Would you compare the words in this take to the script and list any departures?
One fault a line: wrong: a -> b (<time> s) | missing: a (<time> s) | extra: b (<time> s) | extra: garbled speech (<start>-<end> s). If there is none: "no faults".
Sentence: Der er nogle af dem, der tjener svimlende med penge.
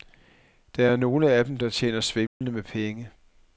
no faults